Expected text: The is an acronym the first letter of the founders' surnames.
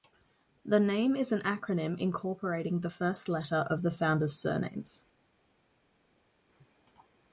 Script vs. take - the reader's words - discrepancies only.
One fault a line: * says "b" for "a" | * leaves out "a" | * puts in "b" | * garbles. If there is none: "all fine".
* puts in "name"
* puts in "incorporating"